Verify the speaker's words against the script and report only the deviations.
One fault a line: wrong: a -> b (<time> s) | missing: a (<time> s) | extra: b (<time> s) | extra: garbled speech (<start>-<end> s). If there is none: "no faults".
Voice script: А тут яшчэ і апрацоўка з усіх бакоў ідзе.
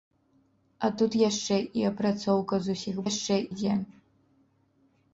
wrong: бакоў -> яшчэ (3.1 s)